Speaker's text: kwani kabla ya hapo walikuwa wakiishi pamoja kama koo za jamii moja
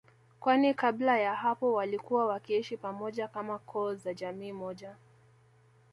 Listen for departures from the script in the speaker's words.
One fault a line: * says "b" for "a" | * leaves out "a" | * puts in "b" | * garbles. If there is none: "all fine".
all fine